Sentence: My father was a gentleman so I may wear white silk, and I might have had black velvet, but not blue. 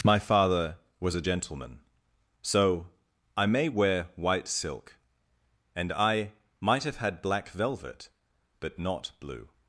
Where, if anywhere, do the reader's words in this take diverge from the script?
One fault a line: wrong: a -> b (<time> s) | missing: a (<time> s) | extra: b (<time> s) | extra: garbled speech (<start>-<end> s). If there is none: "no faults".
no faults